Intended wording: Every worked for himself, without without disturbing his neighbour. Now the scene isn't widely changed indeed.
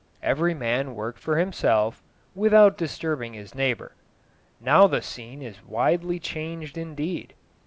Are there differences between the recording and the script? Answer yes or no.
yes